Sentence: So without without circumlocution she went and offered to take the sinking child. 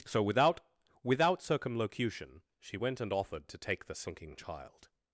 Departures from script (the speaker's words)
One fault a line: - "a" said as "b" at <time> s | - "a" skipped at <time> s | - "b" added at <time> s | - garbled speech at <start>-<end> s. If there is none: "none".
none